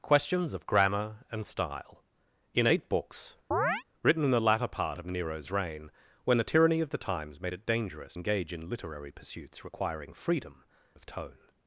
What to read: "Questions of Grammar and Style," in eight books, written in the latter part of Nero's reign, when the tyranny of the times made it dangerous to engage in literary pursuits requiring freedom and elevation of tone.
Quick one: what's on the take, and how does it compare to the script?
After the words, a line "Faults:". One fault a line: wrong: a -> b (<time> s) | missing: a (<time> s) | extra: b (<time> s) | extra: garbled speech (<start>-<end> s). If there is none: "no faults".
"Questions of Grammar and Style," in eight books, written in the latter part of Nero's reign, when the tyranny of the times made it dangerous engage in literary pursuits requiring freedom of tone.
Faults:
missing: to (8.2 s)
missing: and elevation (10.6 s)